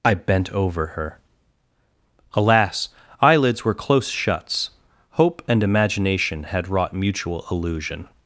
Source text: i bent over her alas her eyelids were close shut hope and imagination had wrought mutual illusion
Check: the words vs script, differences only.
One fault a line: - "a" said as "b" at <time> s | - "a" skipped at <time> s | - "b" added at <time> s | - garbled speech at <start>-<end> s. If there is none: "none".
- "her" skipped at 2.9 s
- "shut" said as "shuts" at 4.1 s